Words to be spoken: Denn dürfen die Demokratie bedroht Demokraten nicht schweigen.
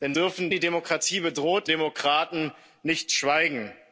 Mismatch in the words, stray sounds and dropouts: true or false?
false